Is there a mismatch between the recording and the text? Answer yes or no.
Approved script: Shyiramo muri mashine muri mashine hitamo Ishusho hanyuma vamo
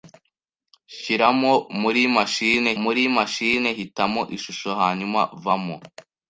no